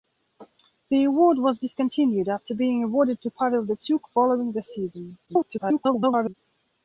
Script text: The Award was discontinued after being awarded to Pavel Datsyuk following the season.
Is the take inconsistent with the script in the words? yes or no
yes